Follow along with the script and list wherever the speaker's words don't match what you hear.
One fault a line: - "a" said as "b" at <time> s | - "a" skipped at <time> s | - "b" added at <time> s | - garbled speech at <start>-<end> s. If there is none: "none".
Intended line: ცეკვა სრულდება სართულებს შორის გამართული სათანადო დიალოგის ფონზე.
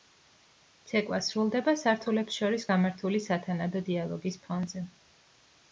none